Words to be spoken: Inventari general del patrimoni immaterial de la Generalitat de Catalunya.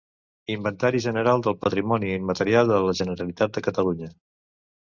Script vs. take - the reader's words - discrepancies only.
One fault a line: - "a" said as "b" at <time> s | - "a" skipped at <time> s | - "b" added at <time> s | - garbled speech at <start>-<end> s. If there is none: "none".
none